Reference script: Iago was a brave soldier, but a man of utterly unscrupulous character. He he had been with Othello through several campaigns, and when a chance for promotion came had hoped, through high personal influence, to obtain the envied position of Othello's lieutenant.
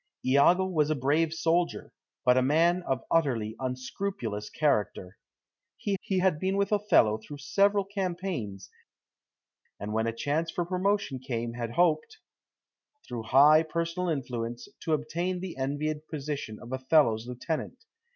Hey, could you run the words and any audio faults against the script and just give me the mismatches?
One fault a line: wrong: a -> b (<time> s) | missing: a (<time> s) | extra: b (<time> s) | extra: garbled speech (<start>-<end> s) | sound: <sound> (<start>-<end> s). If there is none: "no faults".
no faults